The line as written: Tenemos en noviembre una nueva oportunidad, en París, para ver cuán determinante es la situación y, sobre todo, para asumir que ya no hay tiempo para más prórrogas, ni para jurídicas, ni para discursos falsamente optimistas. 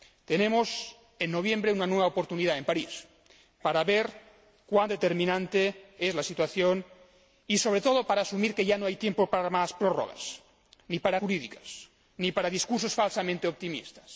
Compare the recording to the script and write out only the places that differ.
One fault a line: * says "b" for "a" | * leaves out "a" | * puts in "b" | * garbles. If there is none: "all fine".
all fine